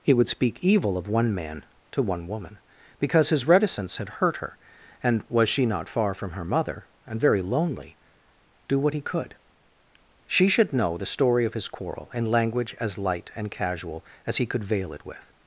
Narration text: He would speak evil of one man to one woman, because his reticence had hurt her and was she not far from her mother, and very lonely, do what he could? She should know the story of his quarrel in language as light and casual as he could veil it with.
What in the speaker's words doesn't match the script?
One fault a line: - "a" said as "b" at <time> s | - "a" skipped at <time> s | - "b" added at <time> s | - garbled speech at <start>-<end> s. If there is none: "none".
none